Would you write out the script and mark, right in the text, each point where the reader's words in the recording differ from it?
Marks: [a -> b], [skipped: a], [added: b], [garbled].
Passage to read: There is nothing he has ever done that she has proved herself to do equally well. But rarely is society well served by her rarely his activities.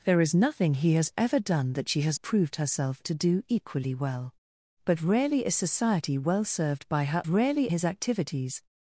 There is nothing he has ever done that she has proved herself to do equally well. But rarely is society well served by her rarely his activities.